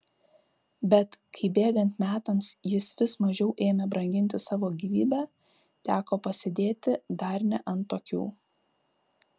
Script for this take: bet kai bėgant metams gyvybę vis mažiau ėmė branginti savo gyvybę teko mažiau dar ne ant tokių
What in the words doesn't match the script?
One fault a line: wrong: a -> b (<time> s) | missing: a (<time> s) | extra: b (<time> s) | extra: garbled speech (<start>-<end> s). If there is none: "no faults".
wrong: gyvybę -> jis (2.7 s)
wrong: mažiau -> pasėdėti (6.3 s)